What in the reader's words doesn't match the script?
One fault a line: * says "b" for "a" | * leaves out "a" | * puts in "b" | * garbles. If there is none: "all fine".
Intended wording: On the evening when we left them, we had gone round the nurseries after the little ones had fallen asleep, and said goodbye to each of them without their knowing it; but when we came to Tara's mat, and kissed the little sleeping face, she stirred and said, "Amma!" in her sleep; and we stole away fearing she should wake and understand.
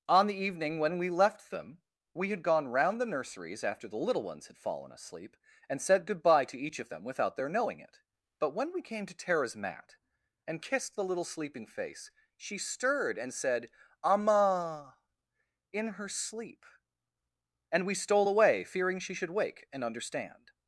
all fine